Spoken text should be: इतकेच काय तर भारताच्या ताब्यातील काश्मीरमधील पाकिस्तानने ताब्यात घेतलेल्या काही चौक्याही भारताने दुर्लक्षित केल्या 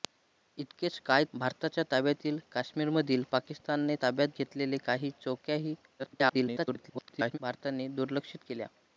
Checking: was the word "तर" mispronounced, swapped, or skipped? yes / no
yes